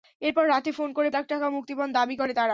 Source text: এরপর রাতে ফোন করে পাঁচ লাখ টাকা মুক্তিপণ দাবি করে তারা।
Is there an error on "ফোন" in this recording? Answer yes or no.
no